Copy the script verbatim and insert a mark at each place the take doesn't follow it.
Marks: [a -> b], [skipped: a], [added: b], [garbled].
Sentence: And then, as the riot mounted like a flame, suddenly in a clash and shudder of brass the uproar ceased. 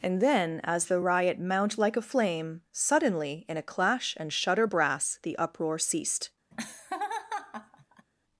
And then, as the riot [mounted -> mount] like a flame, suddenly in a clash and shudder [skipped: of] brass the uproar ceased.